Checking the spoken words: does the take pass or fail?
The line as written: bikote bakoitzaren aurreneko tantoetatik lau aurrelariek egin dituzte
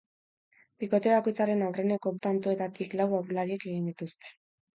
pass